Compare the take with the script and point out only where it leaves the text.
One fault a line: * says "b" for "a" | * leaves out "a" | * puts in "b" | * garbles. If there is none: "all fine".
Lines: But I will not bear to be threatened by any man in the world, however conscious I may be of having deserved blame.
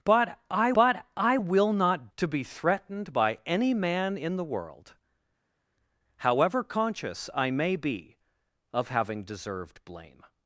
* puts in "but I"
* leaves out "bear"